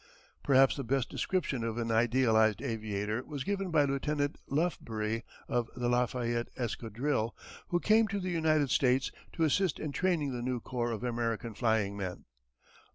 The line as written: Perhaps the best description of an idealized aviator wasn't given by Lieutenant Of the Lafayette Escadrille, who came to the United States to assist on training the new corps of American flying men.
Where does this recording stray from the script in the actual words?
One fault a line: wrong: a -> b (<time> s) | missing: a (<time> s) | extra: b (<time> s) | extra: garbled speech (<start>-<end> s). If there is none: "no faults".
wrong: wasn't -> was (3.2 s)
extra: Lufbery (4.5 s)
wrong: on -> in (9.8 s)